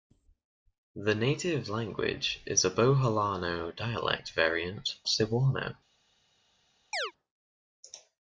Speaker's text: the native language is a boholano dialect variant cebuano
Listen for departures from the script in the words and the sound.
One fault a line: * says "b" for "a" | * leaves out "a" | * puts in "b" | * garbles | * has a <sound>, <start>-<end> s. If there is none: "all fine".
* has a chirp, 6.9-7.1 s